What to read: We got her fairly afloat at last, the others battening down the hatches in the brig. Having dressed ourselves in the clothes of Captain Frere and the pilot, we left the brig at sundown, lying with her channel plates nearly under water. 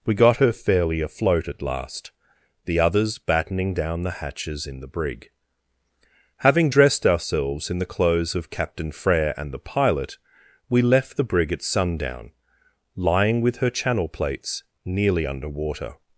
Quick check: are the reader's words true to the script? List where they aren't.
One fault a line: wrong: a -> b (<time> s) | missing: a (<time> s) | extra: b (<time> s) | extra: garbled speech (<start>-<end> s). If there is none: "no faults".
no faults